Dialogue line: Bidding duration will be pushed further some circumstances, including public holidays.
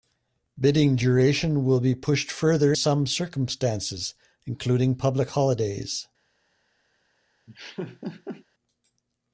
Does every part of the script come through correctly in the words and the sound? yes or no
no